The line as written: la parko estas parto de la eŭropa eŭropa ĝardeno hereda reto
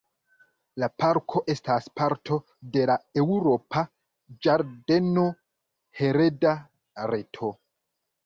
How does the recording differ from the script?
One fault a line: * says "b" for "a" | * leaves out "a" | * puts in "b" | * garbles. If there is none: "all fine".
* leaves out "eŭropa"